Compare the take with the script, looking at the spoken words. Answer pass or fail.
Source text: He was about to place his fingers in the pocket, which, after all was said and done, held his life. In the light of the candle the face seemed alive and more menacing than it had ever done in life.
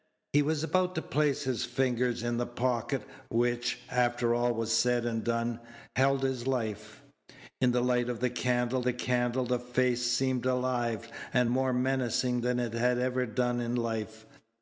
fail